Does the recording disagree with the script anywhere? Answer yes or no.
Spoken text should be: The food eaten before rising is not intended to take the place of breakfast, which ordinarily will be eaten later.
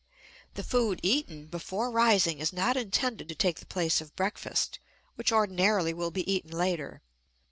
no